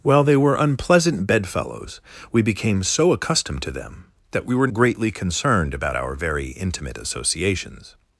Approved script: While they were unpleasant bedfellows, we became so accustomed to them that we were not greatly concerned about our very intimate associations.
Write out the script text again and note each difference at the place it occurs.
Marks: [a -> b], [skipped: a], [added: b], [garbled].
While they were unpleasant bedfellows, we became so accustomed to them that we were [skipped: not] greatly concerned about our very intimate associations.